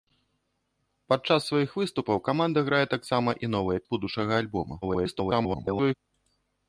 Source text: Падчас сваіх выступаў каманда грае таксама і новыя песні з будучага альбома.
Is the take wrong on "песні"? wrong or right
wrong